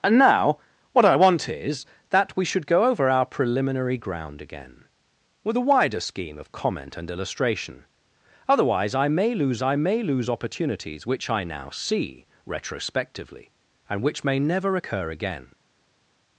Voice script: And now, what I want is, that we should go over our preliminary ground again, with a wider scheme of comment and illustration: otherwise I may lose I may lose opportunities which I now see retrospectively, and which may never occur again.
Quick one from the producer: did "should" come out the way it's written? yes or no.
yes